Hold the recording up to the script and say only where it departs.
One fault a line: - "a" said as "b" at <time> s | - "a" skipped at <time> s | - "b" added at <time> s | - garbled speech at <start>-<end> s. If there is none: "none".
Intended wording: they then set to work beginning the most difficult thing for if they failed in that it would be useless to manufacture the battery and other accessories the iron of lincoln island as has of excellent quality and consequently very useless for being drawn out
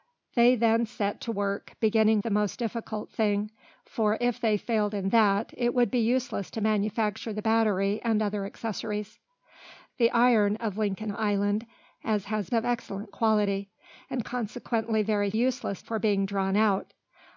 none